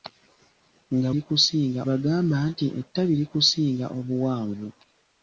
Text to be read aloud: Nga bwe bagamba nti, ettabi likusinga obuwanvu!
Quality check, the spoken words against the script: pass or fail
fail